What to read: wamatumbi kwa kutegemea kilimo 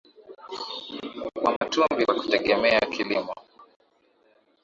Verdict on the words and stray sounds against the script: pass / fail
fail